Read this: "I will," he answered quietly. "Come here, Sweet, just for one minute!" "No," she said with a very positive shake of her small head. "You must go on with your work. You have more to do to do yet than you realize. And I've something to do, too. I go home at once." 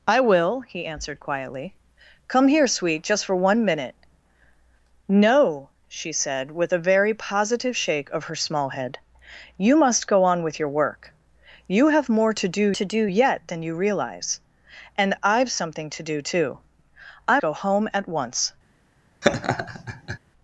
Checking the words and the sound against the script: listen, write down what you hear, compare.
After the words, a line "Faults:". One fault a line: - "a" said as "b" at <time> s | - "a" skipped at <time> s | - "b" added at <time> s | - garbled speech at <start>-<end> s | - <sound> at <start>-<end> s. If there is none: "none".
"I will," he answered quietly. "Come here, Sweet, just for one minute!" "No," she said with a very positive shake of her small head. "You must go on with your work. You have more to do to do yet than you realize. And I've something to do, too. I go home at once."
Faults:
- laugh at 19.2-20.2 s